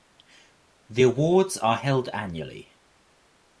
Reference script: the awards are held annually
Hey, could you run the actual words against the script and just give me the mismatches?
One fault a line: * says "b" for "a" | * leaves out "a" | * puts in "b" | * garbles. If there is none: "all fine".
all fine